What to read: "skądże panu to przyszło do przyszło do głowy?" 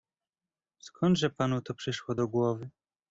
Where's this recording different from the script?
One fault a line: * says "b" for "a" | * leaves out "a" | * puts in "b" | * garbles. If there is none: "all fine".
* leaves out "przyszło do"